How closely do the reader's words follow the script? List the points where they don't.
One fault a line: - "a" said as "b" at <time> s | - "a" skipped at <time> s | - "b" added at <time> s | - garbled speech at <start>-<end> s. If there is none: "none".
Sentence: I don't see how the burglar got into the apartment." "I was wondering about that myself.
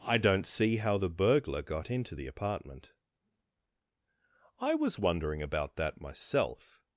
none